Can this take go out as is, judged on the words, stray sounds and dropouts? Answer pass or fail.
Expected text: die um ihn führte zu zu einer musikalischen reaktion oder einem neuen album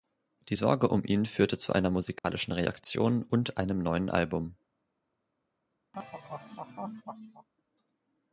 fail